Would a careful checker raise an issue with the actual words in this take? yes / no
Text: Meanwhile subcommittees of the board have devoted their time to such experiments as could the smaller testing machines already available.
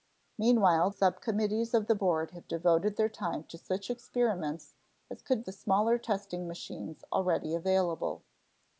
no